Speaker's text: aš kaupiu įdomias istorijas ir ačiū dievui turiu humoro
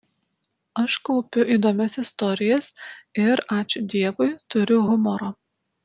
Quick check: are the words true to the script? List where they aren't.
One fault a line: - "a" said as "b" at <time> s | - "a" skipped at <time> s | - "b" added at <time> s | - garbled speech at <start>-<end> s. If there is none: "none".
none